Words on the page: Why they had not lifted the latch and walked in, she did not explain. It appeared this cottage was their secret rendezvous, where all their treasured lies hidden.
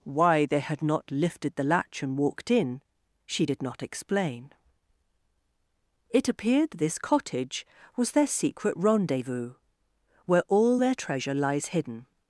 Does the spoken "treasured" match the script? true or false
false